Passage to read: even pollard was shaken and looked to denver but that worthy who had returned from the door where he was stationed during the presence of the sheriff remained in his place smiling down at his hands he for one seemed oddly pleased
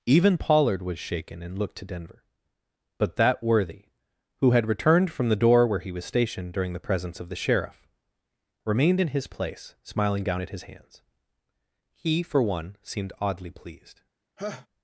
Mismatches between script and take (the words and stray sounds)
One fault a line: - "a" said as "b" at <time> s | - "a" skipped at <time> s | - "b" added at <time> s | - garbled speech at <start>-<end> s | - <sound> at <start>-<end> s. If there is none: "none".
- laugh at 14.4-14.7 s